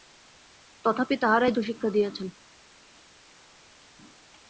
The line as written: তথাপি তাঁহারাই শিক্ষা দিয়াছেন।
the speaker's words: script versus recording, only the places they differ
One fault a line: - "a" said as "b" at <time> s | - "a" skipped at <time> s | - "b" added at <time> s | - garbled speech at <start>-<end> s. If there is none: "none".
none